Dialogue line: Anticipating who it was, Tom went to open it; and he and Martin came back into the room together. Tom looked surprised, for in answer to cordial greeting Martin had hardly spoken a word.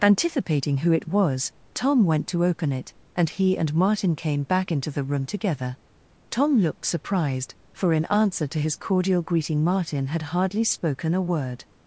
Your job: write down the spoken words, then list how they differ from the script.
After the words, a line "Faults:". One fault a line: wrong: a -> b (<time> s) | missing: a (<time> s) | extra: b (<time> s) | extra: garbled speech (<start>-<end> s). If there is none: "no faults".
Anticipating who it was, Tom went to open it; and he and Martin came back into the room together. Tom looked surprised, for in answer to his cordial greeting Martin had hardly spoken a word.
Faults:
extra: his (8.6 s)